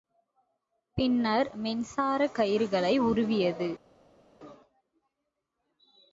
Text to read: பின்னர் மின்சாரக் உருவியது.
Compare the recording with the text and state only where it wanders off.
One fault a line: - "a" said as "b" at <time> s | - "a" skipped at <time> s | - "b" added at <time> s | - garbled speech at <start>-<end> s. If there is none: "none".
- "கயிறுகளை" added at 2.3 s